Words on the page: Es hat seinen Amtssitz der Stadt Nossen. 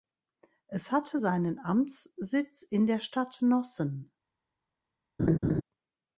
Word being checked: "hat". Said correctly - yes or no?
no